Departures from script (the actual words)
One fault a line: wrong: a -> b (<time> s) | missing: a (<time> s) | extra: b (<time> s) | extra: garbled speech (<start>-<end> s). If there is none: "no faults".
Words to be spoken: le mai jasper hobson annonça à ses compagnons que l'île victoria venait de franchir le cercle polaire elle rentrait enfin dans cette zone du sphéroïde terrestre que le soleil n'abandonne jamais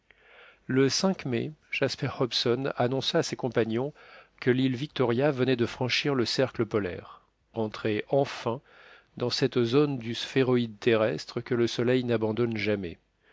missing: elle (7.2 s)